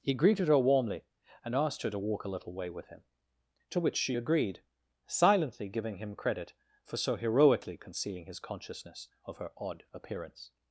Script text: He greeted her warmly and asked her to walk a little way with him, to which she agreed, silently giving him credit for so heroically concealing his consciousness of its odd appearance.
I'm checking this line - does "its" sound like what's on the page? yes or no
no